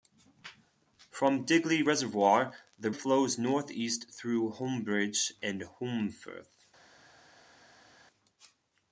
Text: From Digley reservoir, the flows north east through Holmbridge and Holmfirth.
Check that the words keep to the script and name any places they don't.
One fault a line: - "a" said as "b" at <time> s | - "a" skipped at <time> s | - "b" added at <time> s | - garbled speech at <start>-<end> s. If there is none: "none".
none